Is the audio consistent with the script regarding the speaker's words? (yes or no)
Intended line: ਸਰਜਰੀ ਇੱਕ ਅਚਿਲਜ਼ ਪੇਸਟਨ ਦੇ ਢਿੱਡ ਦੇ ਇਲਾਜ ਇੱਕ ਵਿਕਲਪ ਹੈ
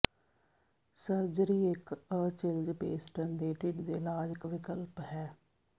yes